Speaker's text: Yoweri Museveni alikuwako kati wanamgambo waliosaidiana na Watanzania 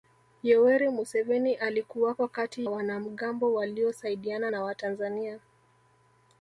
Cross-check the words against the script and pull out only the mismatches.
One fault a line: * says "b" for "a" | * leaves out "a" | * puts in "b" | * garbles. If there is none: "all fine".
all fine